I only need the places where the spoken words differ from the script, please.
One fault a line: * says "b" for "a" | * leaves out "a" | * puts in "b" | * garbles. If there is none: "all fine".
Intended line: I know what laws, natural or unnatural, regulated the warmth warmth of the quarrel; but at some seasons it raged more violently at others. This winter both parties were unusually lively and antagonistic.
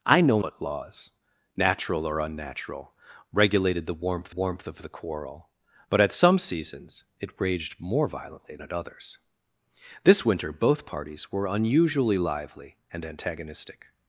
all fine